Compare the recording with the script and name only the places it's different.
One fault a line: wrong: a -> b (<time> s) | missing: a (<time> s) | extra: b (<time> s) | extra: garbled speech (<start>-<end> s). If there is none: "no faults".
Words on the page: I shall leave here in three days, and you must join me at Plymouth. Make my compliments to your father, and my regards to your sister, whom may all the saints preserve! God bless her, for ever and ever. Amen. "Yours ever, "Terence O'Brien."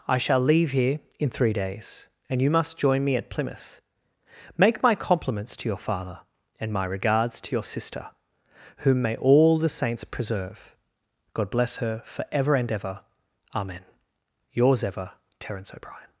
no faults